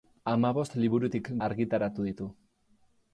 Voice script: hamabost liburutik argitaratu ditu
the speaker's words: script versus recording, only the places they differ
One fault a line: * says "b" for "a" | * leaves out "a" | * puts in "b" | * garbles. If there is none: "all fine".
all fine